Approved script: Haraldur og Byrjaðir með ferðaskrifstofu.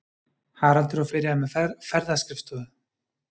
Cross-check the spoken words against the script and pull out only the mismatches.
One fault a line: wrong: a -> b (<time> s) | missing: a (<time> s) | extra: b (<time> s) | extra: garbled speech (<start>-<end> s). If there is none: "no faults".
no faults